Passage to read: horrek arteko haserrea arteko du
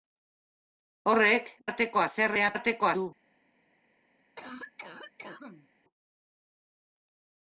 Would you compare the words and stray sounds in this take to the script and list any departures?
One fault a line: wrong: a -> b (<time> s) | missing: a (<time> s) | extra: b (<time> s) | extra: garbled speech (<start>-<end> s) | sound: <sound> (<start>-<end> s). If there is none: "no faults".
sound: cough (4.4-5.7 s)